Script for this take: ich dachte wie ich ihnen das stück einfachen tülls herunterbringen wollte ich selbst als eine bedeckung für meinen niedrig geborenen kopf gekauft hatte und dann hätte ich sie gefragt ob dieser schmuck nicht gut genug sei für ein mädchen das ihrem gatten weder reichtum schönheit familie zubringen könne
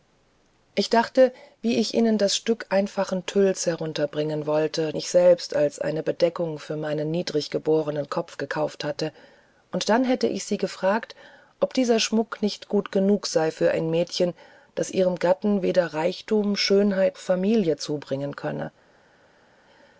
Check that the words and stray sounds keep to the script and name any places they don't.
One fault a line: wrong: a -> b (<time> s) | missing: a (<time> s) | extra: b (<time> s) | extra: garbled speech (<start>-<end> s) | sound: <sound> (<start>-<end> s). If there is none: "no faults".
no faults